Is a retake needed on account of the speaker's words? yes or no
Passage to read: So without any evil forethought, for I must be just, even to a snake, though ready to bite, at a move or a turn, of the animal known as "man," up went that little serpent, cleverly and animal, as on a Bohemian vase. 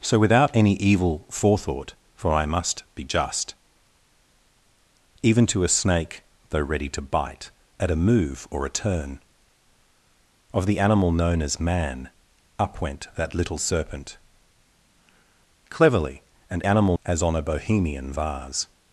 no